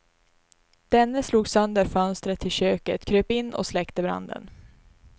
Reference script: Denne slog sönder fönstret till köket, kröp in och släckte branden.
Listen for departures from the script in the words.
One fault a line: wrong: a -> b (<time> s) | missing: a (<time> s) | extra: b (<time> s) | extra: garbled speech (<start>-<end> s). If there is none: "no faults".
no faults